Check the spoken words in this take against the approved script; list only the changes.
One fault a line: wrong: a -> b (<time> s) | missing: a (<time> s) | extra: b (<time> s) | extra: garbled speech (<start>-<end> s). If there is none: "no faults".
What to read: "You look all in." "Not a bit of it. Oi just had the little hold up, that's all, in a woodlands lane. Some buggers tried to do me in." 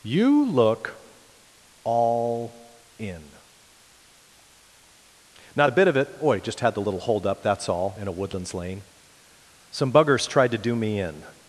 no faults